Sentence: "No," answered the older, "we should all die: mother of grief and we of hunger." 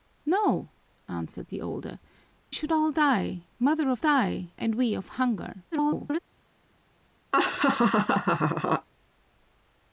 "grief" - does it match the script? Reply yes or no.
no